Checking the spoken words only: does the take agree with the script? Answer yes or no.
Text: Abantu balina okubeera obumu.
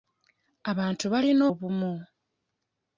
no